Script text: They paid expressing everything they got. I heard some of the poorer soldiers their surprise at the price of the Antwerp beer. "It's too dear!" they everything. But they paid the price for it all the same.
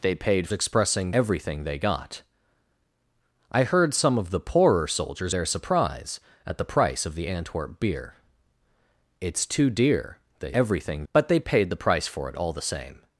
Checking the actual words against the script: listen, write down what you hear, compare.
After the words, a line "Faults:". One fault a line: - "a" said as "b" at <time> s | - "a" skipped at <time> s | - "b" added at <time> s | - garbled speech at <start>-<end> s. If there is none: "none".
They paid expressing everything they got. I heard some of the poorer soldiers their surprise at the price of the Antwerp beer. "It's too dear!" they everything. But they paid the price for it all the same.
Faults:
none